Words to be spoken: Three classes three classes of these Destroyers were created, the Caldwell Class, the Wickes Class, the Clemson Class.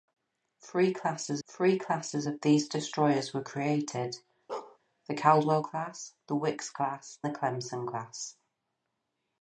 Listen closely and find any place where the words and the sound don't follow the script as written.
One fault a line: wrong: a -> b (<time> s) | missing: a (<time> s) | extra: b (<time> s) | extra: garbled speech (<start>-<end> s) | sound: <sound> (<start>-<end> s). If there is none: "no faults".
sound: bark (4.5-4.8 s)